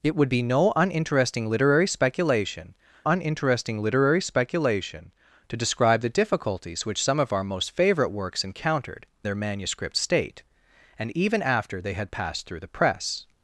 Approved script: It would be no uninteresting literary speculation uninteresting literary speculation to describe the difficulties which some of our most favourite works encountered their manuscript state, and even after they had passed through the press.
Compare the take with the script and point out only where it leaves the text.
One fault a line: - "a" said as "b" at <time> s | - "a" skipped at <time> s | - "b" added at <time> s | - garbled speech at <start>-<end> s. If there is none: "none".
none